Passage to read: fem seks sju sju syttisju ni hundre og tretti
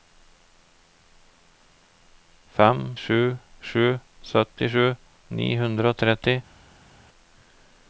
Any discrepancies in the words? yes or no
yes